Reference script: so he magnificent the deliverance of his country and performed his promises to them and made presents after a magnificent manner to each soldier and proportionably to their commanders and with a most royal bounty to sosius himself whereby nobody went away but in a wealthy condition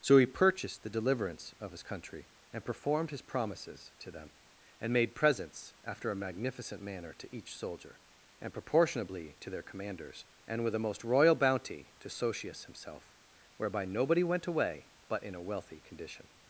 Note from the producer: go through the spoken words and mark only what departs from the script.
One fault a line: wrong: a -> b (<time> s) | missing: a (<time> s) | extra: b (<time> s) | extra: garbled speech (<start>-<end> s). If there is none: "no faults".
wrong: magnificent -> purchased (0.2 s)